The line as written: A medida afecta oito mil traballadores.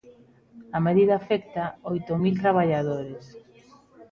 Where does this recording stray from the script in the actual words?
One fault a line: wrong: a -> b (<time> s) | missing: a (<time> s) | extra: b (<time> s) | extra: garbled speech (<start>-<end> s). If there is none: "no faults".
no faults